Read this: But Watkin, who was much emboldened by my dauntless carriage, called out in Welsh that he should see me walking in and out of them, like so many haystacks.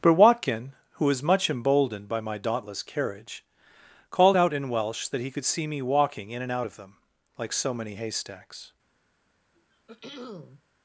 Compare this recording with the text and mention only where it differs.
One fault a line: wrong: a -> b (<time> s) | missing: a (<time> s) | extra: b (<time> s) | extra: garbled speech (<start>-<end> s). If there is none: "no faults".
wrong: should -> could (5.3 s)